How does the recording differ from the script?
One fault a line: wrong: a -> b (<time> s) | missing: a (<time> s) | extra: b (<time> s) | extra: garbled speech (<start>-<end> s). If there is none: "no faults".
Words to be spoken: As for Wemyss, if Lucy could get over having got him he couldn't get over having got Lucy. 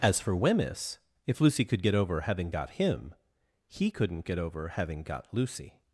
no faults